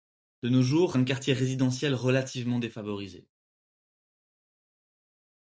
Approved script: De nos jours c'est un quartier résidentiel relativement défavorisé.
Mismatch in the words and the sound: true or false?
true